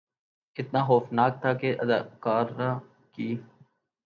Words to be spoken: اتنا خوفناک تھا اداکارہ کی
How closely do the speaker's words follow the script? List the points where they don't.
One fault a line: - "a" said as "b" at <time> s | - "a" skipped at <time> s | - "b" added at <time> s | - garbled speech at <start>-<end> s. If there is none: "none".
- "کہ" added at 1.6 s